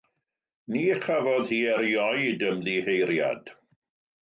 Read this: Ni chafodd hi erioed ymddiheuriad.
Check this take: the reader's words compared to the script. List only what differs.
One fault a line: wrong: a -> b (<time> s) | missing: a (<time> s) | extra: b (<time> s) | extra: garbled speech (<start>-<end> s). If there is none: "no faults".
no faults